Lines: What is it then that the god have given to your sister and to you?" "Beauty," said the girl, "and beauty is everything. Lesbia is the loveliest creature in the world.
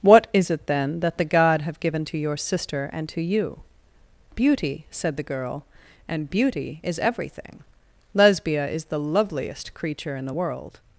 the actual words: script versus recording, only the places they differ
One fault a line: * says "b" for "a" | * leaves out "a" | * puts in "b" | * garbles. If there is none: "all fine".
all fine